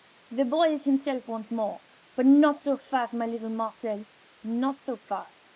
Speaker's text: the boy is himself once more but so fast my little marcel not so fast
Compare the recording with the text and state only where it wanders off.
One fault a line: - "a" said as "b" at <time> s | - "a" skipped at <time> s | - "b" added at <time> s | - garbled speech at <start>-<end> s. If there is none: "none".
- "not" added at 2.2 s